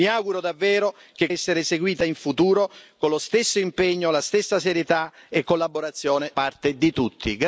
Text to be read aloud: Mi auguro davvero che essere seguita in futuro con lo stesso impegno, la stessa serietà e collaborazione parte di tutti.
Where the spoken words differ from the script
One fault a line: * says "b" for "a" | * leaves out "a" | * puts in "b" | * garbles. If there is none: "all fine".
all fine